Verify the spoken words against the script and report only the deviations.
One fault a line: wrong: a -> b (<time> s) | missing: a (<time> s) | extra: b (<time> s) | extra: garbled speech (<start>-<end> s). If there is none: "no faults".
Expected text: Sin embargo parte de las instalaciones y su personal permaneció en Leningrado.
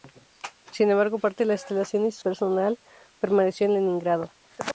missing: su (2.2 s)